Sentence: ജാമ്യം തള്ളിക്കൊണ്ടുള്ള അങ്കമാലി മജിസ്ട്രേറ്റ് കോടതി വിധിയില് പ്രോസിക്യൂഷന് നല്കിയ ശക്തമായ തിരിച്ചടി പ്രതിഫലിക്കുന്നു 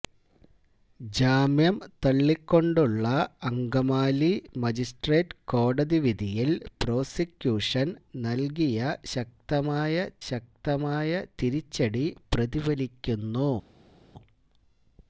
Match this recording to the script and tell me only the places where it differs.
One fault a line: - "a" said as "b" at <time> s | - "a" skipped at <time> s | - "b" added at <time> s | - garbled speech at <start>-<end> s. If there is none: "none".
- "ശക്തമായ" added at 10.3 s